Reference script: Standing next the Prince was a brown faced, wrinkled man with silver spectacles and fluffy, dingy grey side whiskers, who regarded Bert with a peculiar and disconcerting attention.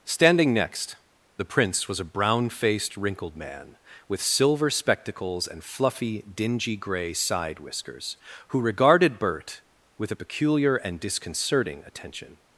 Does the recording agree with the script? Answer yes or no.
yes